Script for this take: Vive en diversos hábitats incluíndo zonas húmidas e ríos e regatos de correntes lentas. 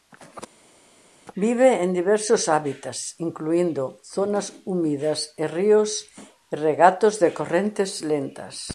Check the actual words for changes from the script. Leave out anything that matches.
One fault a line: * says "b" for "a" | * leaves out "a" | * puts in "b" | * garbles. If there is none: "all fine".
all fine